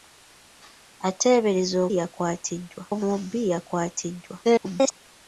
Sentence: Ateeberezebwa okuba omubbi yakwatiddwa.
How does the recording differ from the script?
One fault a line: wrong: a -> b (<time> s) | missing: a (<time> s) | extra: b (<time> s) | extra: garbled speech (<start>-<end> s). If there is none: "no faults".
wrong: okuba -> yakwatiddwa (2.0 s)
extra: garbled speech (4.4-4.9 s)